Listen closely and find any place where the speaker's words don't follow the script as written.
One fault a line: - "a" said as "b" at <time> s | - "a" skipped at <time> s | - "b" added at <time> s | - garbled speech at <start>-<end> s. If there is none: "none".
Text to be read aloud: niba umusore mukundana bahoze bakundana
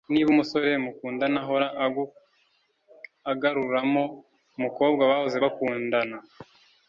- "ahora agaruramo umukobwa" added at 1.4 s